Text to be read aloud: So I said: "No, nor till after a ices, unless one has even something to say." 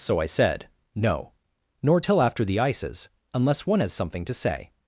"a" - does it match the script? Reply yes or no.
no